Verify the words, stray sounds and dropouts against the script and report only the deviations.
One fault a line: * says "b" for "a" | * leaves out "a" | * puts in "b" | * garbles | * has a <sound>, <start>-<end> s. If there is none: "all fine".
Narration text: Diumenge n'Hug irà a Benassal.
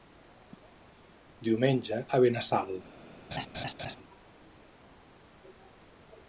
* leaves out "n'Hug irà"
* has a laugh, 3.3-4.0 s